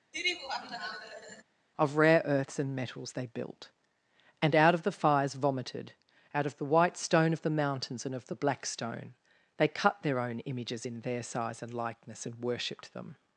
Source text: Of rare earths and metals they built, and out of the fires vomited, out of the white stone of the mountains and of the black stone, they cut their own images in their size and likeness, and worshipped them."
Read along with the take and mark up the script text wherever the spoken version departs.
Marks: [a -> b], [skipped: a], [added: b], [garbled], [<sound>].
[laugh] Of rare earths and metals they built, and out of the fires vomited, out of the white stone of the mountains and of the black stone, they cut their own images in their size and likeness, and worshipped them."